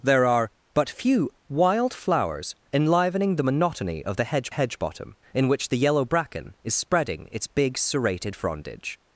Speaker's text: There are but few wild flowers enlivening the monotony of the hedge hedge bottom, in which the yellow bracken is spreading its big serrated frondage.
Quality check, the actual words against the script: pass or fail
pass